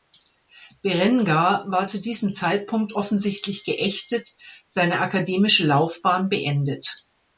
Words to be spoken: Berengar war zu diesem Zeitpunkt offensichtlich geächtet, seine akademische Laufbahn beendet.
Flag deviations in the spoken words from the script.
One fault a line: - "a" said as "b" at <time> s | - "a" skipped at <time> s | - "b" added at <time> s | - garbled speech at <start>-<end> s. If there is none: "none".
none